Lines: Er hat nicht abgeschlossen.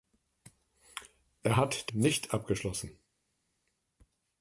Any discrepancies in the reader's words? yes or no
no